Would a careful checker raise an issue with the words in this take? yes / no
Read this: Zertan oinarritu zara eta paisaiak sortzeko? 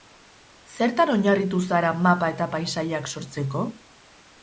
yes